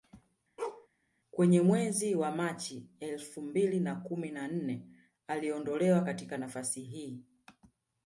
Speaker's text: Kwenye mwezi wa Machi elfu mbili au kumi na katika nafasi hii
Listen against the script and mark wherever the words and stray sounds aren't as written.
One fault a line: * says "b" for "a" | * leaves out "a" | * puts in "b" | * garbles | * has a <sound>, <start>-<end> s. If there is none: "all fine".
* has a bark, 0.6-0.9 s
* says "na" for "au"
* puts in "nne aliondolewa"